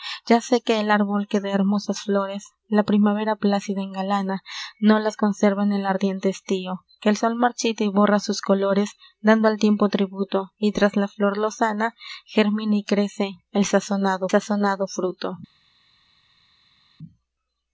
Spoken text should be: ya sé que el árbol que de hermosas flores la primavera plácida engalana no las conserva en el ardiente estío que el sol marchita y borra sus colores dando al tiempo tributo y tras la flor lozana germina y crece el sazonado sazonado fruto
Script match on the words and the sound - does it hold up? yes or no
yes